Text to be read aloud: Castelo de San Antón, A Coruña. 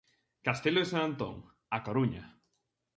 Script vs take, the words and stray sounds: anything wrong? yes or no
no